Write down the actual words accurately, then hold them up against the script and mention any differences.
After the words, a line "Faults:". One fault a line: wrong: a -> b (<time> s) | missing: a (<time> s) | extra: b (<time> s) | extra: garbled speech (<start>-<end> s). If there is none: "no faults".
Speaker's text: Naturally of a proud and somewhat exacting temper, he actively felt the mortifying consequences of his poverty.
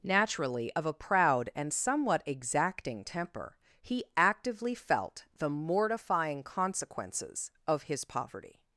Naturally of a proud and somewhat exacting temper, he actively felt the mortifying consequences of his poverty.
Faults:
no faults